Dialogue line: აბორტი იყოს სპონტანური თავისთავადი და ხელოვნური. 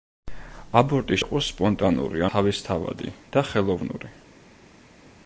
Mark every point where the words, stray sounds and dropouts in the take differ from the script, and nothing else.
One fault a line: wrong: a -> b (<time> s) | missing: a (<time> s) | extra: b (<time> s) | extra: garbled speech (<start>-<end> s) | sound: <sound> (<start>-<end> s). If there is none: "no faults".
no faults